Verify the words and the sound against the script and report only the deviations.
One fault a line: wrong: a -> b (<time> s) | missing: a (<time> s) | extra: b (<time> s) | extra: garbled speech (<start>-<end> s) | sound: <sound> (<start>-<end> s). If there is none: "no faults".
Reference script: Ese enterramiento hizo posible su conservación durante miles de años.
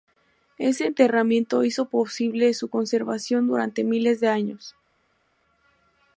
no faults